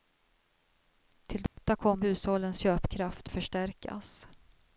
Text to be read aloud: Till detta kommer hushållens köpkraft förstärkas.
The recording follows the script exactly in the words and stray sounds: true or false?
false